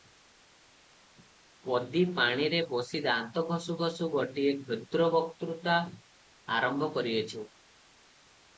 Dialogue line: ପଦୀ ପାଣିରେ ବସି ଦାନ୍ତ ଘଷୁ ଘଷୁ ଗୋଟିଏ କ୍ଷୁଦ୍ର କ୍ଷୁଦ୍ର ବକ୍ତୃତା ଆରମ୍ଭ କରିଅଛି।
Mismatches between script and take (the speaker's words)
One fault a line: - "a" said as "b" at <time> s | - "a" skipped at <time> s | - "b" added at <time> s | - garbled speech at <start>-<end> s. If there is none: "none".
- "କ୍ଷୁଦ୍ର" skipped at 5.1 s